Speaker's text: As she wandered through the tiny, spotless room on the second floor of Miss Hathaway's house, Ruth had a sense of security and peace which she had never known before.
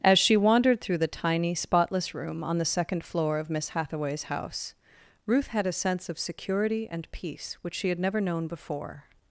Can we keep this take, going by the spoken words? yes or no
yes